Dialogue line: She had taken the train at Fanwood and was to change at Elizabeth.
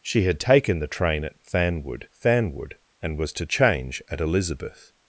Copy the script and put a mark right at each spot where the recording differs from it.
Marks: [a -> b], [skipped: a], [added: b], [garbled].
She had taken the train at Fanwood [added: Fanwood] and was to change at Elizabeth.